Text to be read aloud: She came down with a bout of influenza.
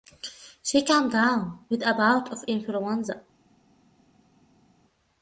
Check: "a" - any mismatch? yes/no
no